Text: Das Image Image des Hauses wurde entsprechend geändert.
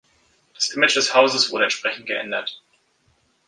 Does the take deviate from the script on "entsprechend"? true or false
false